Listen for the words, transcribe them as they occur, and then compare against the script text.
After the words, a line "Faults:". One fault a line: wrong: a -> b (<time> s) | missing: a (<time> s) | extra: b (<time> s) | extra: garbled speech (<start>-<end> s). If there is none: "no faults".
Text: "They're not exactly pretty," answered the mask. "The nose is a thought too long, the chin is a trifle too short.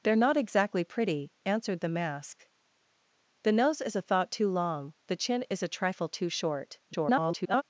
"They're not exactly pretty," answered the mask. "The nose is a thought too long, the chin is a trifle too short. [garbled]
Faults:
extra: garbled speech (6.9-7.6 s)